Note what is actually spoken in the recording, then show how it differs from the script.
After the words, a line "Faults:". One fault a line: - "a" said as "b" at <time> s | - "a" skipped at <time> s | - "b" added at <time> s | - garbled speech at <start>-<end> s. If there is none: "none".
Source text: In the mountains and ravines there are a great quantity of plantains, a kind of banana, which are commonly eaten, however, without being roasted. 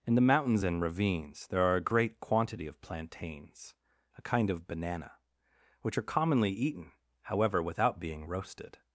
In the mountains and ravines there are a great quantity of plantains, a kind of banana, which are commonly eaten, however, without being roasted.
Faults:
none